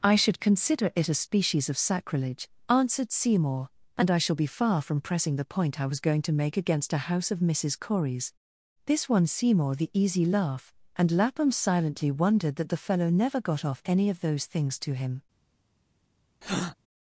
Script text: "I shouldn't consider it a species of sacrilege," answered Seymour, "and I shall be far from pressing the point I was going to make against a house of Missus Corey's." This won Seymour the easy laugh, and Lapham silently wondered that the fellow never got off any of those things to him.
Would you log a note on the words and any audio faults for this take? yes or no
yes